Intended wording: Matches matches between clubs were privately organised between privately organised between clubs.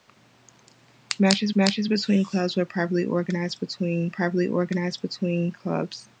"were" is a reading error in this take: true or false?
false